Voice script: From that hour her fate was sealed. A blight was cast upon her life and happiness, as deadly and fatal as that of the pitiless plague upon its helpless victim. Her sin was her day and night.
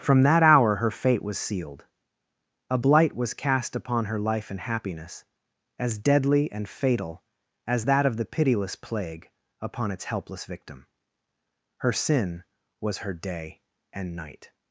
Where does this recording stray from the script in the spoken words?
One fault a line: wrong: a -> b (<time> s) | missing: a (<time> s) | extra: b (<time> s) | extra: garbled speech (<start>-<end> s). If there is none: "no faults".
no faults